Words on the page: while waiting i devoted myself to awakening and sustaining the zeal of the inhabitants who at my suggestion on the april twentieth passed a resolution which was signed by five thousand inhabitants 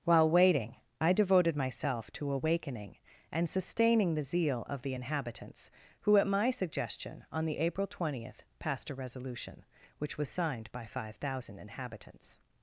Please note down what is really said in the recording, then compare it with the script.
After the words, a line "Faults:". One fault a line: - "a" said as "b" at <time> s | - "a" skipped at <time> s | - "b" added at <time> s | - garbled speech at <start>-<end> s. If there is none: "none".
while waiting i devoted myself to awakening and sustaining the zeal of the inhabitants who at my suggestion on the april twentieth passed a resolution which was signed by five thousand inhabitants
Faults:
none